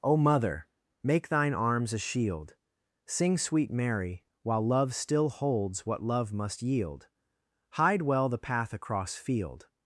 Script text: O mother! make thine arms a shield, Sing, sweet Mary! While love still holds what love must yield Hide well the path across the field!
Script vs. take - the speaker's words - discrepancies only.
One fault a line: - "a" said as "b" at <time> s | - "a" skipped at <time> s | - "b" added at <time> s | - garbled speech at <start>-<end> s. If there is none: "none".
- "the" skipped at 9.2 s